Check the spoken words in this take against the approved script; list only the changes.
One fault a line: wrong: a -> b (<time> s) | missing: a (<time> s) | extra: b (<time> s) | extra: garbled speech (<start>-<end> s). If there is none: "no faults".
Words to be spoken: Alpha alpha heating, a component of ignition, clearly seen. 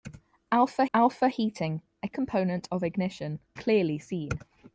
no faults